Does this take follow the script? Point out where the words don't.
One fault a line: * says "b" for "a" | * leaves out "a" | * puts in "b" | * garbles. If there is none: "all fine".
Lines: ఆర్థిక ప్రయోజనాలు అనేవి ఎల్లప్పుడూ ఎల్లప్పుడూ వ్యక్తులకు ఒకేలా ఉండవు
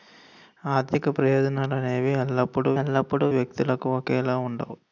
all fine